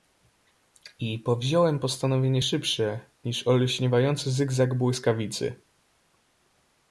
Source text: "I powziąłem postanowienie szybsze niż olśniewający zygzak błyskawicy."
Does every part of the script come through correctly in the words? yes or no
yes